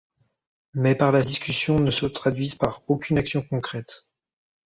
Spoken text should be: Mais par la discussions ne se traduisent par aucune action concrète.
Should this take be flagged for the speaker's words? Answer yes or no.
no